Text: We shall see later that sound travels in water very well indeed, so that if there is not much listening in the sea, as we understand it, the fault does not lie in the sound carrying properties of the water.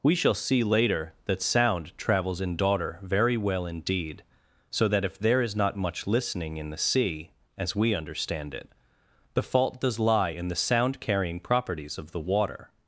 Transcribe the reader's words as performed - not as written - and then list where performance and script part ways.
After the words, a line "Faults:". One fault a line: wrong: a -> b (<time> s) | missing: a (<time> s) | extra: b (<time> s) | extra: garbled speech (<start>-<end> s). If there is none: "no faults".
We shall see later that sound travels in daughter very well indeed, so that if there is not much listening in the sea, as we understand it, the fault does lie in the sound carrying properties of the water.
Faults:
wrong: water -> daughter (2.6 s)
missing: not (10.0 s)